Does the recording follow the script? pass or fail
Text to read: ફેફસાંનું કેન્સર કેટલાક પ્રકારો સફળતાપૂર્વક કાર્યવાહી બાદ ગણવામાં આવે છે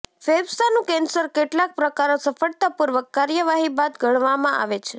pass